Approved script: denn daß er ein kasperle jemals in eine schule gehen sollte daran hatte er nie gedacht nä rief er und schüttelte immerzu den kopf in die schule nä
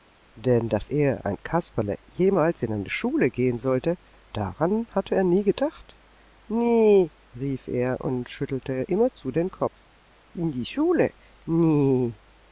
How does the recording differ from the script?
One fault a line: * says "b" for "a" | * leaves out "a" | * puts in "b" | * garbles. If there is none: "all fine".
all fine